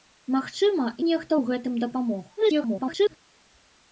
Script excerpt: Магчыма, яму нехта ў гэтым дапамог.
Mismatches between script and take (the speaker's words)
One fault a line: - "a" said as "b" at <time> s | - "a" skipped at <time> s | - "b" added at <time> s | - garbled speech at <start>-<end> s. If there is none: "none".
- "яму" skipped at 0.8 s
- garbled speech at 2.4-3.2 s